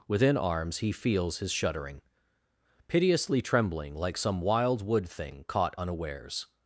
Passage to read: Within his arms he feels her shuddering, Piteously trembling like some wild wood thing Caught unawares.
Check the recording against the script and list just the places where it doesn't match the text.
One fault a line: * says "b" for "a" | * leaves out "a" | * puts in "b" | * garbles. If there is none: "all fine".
* leaves out "his"
* says "his" for "her"